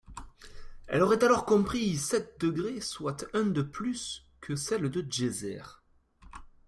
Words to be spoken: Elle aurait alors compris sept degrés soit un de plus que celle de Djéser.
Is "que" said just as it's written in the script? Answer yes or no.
yes